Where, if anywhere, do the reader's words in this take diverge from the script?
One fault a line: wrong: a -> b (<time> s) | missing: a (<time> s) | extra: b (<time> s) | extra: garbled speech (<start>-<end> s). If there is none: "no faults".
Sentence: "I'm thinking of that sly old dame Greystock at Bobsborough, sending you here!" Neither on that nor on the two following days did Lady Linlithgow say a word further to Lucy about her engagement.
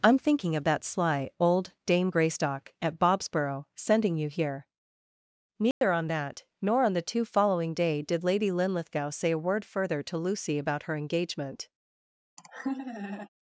wrong: days -> day (7.7 s)